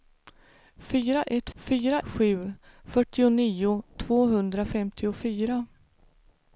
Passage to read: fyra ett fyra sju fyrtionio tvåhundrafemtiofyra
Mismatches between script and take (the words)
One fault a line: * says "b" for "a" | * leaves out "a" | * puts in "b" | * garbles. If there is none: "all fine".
all fine